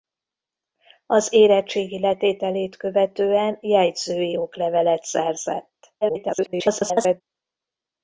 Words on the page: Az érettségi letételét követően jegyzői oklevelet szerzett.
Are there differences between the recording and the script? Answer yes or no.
yes